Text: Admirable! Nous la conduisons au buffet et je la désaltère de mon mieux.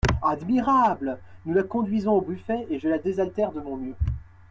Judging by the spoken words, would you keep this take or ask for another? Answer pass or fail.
pass